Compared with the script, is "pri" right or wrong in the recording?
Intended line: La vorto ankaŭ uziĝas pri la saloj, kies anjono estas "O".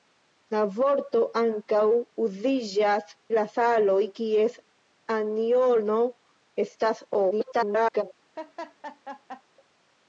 wrong